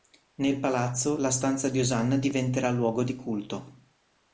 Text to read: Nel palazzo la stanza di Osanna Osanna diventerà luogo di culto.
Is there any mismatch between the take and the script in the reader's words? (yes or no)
yes